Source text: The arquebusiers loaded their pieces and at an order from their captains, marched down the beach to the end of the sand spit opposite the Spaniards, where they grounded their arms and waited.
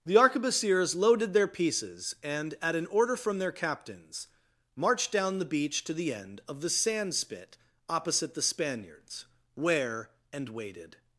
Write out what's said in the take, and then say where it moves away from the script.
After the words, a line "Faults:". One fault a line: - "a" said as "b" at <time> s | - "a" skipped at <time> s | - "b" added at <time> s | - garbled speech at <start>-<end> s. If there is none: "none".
The arquebusiers loaded their pieces and at an order from their captains, marched down the beach to the end of the sand spit opposite the Spaniards, where and waited.
Faults:
- "they grounded their arms" skipped at 10.1 s